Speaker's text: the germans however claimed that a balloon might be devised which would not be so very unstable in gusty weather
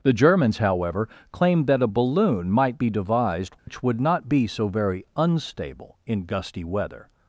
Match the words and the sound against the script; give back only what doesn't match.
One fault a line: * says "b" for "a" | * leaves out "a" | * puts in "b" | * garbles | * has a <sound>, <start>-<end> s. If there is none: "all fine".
* has a dropout, 3.6-3.7 s